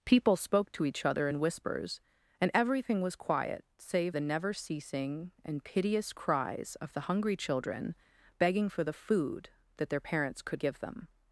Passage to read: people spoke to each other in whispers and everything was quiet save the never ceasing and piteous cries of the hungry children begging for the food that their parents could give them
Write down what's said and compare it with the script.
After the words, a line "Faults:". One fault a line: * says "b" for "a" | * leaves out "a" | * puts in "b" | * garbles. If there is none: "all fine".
people spoke to each other in whispers and everything was quiet save the never ceasing and piteous cries of the hungry children begging for the food that their parents could give them
Faults:
all fine